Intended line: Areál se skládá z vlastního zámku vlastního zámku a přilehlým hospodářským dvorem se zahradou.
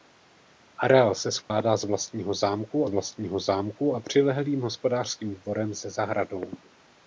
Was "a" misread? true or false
false